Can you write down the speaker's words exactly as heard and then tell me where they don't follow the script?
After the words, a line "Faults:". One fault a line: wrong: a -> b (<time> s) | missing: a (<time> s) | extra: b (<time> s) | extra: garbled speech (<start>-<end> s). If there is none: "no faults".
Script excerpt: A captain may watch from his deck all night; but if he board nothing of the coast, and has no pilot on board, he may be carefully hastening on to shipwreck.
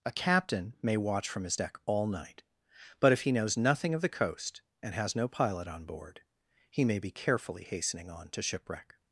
A captain may watch from his deck all night; but if he knows nothing of the coast, and has no pilot on board, he may be carefully hastening on to shipwreck.
Faults:
wrong: board -> knows (3.3 s)